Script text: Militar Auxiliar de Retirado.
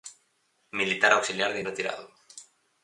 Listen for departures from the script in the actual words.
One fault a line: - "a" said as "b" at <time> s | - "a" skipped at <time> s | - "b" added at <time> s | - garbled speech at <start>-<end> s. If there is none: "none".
none